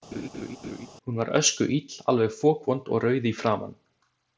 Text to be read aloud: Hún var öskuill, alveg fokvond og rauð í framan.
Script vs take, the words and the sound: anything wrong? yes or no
yes